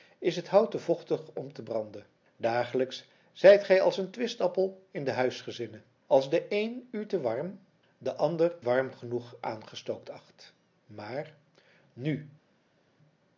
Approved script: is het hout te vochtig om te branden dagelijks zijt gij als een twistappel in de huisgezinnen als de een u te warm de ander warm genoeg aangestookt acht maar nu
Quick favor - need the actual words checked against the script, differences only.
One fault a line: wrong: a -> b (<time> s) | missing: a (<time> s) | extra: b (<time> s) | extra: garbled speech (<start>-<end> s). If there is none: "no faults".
no faults